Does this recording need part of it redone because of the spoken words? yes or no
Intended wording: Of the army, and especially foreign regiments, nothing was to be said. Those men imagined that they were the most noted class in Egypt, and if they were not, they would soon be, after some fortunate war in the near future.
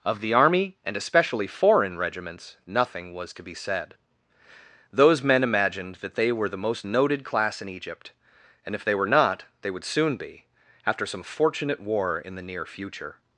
no